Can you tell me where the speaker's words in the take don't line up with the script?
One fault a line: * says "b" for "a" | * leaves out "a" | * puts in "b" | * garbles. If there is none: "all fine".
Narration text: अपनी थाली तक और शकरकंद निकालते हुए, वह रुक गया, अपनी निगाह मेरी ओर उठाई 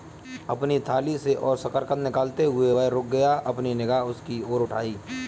* says "से" for "तक"
* says "उसकी" for "मेरी"